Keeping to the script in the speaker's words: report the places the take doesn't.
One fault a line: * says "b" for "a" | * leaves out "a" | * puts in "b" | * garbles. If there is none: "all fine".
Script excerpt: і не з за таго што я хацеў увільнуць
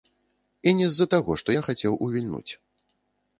all fine